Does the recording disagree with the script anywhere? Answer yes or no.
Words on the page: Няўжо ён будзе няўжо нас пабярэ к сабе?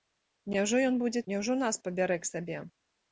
no